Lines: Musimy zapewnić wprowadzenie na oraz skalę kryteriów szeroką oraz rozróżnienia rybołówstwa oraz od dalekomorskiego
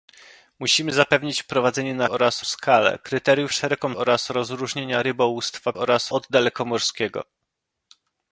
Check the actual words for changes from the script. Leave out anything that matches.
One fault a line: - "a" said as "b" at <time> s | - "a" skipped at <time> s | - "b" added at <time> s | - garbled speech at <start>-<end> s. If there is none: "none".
none